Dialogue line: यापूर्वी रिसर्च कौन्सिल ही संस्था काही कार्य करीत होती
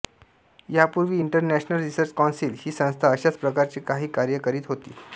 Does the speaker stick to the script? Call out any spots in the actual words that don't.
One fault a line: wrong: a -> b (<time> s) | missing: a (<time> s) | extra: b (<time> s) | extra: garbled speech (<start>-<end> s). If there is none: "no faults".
extra: इंटरनॅशनल (1.2 s)
extra: अशाच प्रकारचे (3.1 s)